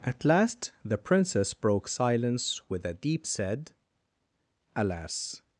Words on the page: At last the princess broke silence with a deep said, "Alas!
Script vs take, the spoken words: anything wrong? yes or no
no